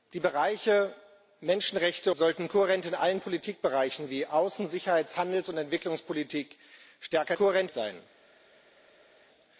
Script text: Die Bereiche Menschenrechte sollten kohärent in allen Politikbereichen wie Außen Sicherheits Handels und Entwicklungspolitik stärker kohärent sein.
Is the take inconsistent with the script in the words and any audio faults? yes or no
no